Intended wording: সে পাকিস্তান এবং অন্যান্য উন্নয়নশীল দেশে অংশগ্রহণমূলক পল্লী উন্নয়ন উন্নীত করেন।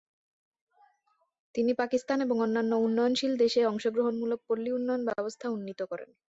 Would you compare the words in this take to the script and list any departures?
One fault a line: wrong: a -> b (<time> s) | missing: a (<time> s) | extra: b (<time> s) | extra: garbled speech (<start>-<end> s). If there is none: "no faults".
wrong: সে -> তিনি (1.6 s)
extra: ব্যবস্থা (5.1 s)